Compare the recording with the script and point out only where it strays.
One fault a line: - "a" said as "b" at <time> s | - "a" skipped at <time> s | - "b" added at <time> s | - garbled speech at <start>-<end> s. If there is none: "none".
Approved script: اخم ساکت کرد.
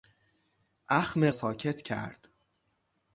none